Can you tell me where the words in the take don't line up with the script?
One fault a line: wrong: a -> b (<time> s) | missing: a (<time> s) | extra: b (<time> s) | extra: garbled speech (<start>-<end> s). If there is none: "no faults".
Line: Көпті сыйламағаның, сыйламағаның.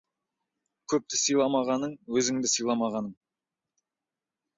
extra: өзіңді (2.2 s)